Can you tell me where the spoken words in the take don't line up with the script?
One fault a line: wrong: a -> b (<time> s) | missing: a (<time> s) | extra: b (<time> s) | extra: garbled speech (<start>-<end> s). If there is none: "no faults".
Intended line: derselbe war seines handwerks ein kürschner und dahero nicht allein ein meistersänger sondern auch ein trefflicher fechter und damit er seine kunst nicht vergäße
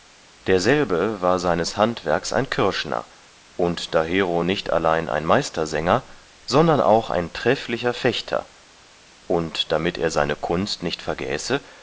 no faults